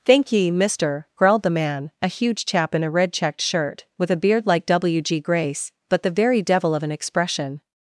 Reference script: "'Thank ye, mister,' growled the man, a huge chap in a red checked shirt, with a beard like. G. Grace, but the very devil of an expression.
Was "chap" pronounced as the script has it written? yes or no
yes